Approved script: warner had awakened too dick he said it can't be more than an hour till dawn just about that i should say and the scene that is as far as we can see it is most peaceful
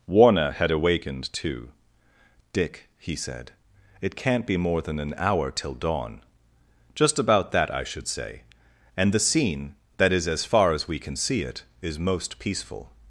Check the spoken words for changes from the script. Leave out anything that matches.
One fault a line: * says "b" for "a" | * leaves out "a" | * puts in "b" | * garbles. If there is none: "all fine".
all fine